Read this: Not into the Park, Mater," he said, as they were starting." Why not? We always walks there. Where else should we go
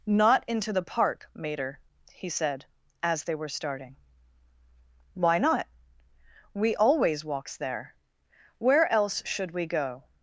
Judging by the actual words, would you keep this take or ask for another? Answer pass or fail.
pass